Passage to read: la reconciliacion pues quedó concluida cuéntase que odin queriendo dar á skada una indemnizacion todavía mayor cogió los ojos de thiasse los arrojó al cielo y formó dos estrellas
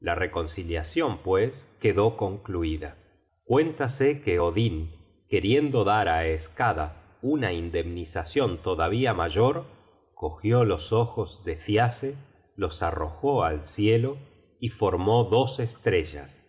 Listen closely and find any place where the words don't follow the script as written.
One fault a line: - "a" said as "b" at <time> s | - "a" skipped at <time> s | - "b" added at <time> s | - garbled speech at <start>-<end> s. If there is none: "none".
none